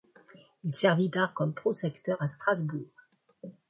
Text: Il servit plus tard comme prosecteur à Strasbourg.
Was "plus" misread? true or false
true